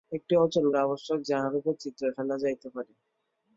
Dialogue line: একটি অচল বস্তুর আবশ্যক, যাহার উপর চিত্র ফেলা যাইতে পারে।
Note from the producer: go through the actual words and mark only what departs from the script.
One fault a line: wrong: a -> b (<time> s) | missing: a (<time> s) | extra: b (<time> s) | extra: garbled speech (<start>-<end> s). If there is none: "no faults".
missing: বস্তুর (0.7 s)